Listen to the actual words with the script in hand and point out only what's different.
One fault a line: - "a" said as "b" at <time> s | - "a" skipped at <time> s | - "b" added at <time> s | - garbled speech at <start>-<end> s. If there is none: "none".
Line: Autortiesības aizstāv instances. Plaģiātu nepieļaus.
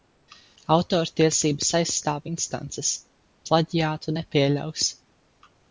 none